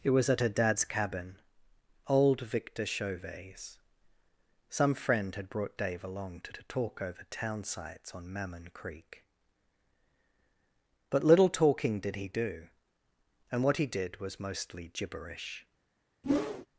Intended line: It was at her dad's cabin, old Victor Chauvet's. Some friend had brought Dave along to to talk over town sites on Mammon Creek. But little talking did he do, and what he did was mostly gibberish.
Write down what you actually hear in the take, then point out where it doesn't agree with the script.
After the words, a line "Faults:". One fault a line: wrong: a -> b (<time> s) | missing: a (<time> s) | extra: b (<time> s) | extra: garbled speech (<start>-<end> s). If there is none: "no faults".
It was at her dad's cabin, old Victor Chauvet's. Some friend had brought Dave along to to talk over town sites on Mammon Creek. But little talking did he do, and what he did was mostly gibberish.
Faults:
no faults